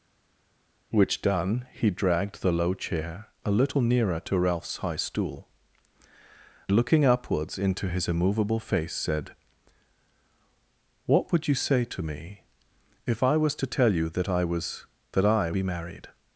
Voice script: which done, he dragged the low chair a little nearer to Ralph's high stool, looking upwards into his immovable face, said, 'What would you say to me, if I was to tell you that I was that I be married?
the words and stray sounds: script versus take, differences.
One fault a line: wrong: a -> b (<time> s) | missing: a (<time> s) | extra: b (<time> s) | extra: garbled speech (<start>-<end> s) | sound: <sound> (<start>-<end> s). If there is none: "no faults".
no faults